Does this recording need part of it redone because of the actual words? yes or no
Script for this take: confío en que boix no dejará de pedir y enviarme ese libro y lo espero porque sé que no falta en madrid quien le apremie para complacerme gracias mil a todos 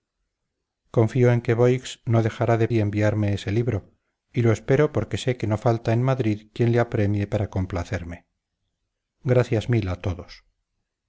yes